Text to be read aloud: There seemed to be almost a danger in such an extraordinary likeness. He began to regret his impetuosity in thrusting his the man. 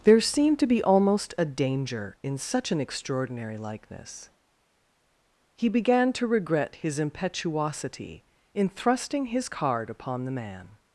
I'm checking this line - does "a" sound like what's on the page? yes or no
yes